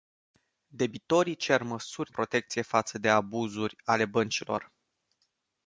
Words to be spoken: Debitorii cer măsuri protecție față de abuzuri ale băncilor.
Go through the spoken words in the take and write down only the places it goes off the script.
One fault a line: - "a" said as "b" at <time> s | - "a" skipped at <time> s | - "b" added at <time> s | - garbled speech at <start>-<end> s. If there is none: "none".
none